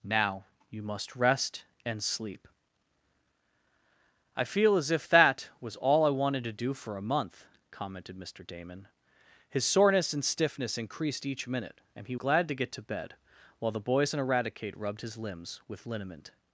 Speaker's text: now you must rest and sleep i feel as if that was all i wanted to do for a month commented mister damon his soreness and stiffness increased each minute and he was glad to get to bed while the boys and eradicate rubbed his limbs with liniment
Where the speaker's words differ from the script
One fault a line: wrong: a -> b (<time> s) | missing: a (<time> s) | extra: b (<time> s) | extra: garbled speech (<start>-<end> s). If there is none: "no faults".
missing: was (12.2 s)